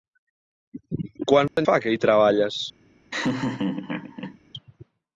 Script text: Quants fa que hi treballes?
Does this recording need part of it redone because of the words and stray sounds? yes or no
yes